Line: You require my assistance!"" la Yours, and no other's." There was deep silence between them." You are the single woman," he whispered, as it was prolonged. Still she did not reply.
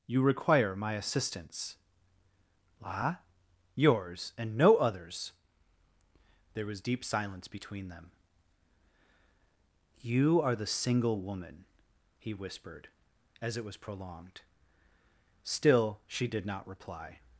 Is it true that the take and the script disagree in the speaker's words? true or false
false